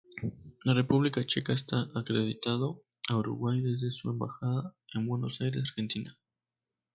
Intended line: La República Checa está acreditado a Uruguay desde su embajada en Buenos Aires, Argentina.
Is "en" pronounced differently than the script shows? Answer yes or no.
no